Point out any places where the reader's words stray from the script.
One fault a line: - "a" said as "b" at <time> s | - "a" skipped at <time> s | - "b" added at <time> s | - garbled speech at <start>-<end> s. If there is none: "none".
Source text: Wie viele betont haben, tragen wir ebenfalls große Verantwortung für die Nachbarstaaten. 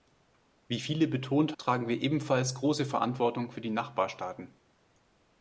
- "haben" skipped at 1.6 s